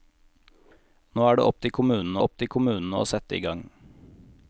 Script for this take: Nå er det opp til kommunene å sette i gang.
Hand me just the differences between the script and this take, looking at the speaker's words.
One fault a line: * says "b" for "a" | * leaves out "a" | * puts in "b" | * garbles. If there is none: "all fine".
* puts in "opp til kommunene"